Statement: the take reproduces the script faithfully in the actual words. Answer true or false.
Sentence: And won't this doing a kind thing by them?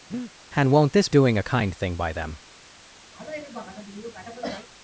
true